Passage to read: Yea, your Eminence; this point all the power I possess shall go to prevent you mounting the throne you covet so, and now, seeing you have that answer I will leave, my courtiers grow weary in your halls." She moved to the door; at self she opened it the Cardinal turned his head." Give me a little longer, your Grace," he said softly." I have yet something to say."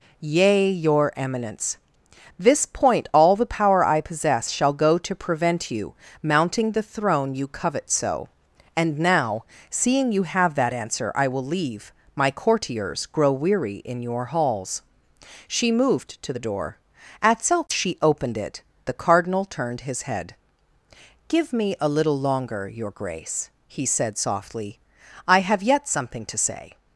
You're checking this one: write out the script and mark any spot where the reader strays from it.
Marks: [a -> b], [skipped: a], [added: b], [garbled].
Yea, your Eminence; this point all the power I possess shall go to prevent you mounting the throne you covet so, and now, seeing you have that answer I will leave, my courtiers grow weary in your halls." She moved to the door; at self she opened it the Cardinal turned his head." Give me a little longer, your Grace," he said softly." I have yet something to say."